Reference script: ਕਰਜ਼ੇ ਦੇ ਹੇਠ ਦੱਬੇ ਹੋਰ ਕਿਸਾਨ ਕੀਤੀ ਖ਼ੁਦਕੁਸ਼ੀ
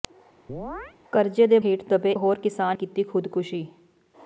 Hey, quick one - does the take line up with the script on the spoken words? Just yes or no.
yes